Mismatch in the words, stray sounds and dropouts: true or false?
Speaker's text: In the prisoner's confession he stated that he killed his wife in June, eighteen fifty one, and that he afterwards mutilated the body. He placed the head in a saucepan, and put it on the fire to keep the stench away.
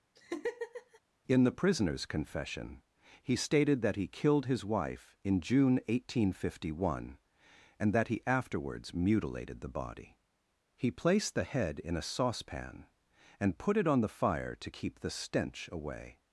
true